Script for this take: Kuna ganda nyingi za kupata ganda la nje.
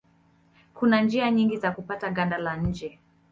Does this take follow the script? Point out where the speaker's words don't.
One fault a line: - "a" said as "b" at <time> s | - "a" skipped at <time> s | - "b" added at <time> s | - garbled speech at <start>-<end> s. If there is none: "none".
- "ganda" said as "njia" at 1.0 s